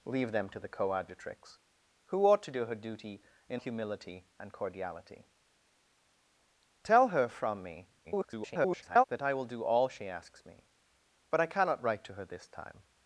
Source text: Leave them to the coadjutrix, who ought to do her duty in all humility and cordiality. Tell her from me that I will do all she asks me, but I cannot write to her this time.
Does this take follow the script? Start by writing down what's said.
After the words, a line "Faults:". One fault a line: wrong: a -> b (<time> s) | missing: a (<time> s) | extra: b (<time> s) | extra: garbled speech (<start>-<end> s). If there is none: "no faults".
Leave them to the coadjutrix, who ought to do her duty in humility and cordiality. Tell her from me [garbled] that I will do all she asks me, but I cannot write to her this time.
Faults:
missing: all (3.6 s)
extra: garbled speech (8.0-9.0 s)